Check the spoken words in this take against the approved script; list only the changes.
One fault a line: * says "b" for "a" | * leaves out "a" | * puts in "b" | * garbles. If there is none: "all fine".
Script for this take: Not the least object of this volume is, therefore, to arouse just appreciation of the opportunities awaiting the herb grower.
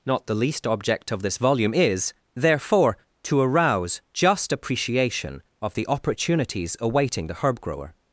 all fine